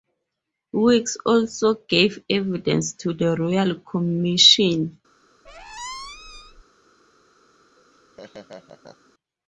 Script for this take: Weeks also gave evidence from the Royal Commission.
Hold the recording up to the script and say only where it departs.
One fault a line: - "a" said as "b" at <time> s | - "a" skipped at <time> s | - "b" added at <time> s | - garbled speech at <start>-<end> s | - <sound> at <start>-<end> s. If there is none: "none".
- "from" said as "to" at 2.9 s
- squeak at 5.4-6.6 s
- laugh at 7.8-9.1 s